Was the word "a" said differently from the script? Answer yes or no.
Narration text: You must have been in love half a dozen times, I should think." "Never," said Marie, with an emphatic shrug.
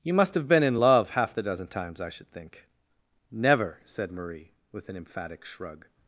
yes